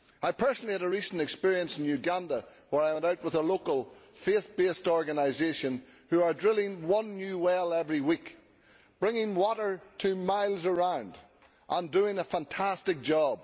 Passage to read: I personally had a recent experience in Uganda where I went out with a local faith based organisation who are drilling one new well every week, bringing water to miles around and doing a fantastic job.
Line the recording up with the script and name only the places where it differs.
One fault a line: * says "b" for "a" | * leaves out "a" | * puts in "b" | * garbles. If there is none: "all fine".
all fine